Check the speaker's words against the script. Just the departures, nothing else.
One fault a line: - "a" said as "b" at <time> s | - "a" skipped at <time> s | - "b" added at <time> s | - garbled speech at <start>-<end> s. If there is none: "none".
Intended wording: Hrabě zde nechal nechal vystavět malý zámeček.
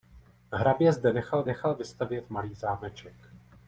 none